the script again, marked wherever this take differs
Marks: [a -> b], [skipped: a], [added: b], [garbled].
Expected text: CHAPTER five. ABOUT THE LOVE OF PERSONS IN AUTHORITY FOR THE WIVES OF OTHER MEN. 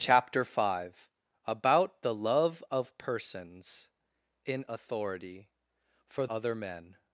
CHAPTER five. ABOUT THE LOVE OF PERSONS IN AUTHORITY FOR [skipped: THE WIVES OF] OTHER MEN.